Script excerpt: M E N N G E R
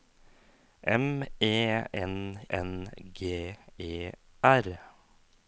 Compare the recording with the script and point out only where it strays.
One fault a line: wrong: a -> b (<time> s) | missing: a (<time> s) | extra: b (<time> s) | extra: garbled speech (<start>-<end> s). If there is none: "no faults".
no faults